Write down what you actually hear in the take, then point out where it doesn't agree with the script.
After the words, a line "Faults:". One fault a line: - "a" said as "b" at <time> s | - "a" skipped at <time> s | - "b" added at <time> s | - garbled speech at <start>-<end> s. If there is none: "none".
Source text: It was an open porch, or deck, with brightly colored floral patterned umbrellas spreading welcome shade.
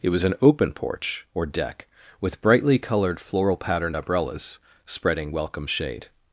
It was an open porch, or deck, with brightly colored floral patterned umbrellas spreading welcome shade.
Faults:
none